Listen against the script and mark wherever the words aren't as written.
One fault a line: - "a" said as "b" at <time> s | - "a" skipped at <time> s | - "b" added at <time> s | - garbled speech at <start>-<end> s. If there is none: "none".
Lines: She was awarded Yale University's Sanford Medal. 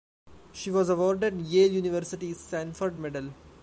none